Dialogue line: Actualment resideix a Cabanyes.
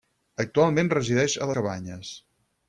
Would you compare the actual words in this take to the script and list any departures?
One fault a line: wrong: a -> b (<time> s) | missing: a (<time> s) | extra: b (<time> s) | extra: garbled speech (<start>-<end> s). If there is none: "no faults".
no faults